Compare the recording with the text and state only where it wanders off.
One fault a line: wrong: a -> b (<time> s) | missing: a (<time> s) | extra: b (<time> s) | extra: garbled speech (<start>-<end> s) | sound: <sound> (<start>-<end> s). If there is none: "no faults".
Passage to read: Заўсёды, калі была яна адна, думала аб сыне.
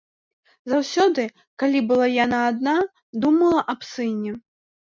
no faults